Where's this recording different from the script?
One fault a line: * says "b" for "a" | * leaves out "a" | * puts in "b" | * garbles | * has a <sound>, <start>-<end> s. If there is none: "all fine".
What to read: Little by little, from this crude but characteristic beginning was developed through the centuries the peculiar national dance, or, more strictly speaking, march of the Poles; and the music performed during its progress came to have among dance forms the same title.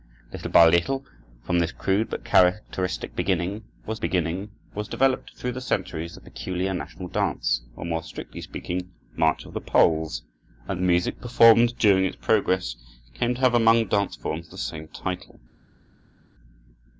* puts in "beginning was"